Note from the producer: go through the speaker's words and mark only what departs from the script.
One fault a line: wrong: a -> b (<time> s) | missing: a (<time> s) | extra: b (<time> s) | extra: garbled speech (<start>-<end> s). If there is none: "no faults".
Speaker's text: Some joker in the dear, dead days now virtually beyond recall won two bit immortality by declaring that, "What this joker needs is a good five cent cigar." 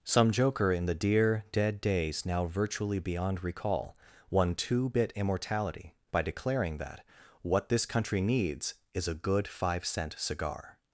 wrong: joker -> country (7.8 s)